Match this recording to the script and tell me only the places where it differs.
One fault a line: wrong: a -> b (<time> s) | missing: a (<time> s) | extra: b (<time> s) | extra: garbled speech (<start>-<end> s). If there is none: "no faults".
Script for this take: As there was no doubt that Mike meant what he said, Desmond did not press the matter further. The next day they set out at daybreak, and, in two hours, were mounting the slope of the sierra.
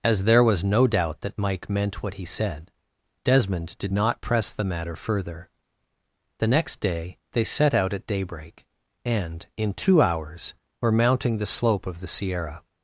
no faults